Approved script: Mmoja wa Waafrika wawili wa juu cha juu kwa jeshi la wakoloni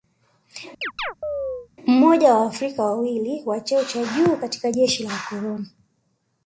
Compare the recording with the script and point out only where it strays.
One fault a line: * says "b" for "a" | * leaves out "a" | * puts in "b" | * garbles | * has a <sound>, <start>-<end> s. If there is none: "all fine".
* has a chirp, 0.8-1.7 s
* says "cheo" for "juu"
* says "katika" for "kwa"